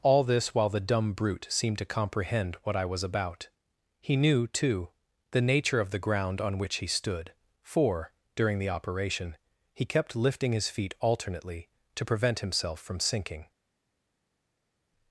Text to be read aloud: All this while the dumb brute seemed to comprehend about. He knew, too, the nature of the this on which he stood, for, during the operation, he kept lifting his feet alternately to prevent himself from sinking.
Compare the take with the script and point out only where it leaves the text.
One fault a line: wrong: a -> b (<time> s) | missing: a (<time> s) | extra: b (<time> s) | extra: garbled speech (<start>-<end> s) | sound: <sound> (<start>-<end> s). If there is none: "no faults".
extra: what I was (2.6 s)
wrong: this -> ground (6.0 s)